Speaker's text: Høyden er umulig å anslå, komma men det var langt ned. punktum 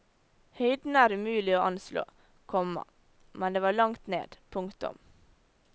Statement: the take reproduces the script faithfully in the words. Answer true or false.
true